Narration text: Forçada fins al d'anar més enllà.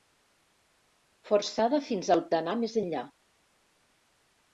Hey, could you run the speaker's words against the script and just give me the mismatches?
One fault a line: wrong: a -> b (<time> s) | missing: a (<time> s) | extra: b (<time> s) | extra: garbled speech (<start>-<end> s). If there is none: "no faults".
no faults